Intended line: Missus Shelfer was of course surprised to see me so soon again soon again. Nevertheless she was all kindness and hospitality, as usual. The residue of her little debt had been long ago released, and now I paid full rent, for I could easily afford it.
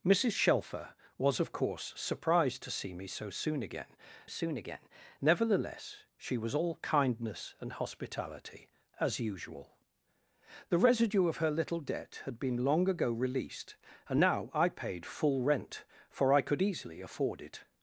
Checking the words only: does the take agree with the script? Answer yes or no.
yes